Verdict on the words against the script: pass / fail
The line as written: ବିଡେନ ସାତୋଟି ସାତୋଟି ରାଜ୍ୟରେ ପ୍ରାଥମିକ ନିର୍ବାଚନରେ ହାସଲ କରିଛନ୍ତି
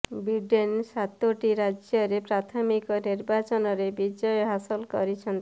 fail